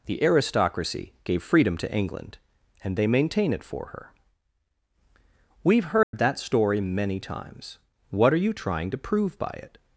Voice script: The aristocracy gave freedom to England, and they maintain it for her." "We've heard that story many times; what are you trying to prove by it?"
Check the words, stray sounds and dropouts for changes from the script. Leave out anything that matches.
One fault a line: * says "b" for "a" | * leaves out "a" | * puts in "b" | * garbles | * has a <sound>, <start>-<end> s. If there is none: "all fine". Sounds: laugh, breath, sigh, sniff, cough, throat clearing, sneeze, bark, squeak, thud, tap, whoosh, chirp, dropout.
* has a dropout, 6.0-6.1 s